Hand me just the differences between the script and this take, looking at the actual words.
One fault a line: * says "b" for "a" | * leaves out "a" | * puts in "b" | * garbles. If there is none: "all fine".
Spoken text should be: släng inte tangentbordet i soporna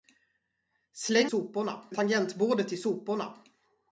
* says "soporna" for "inte"